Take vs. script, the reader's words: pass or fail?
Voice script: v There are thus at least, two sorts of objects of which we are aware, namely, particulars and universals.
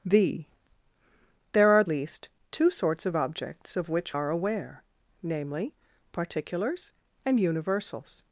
fail